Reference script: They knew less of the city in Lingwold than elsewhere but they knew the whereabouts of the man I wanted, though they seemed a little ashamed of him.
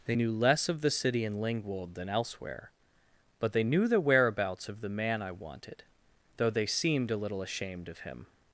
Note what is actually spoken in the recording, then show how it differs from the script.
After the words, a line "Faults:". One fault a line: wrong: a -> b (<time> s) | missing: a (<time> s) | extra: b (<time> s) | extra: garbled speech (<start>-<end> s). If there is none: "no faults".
They knew less of the city in Lingwold than elsewhere but they knew the whereabouts of the man I wanted, though they seemed a little ashamed of him.
Faults:
no faults